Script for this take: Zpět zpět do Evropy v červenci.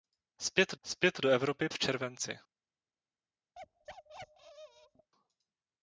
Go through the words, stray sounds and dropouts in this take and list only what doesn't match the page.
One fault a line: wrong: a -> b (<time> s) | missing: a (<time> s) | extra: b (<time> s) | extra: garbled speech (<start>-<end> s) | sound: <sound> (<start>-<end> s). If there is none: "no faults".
sound: bark (3.5-5.1 s)